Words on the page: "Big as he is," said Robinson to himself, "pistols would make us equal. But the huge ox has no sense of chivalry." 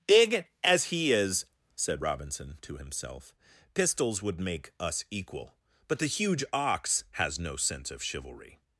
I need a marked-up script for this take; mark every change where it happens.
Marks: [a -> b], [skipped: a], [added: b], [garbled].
"Big as he is," said Robinson to himself, "pistols would make us equal. But the huge ox has no sense of chivalry."